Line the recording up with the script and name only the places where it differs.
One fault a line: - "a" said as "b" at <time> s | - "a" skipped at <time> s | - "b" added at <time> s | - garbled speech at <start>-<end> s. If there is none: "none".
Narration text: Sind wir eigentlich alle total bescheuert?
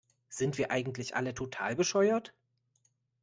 none